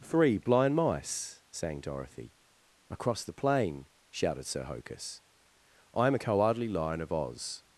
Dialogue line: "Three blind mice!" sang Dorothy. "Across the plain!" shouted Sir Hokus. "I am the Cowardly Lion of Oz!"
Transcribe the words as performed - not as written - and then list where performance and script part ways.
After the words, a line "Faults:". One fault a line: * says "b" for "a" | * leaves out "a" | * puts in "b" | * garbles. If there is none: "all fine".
"Three blind mice!" sang Dorothy. "Across the plain!" shouted Sir Hokus. "I am a Cowardly Lion of Oz!"
Faults:
* says "a" for "the"